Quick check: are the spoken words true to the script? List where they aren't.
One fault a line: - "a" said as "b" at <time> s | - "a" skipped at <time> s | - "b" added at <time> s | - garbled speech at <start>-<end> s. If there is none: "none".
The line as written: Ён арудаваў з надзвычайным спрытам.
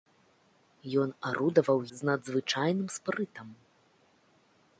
none